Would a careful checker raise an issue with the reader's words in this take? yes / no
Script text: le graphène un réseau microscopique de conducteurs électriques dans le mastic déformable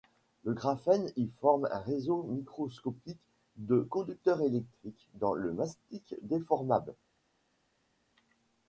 yes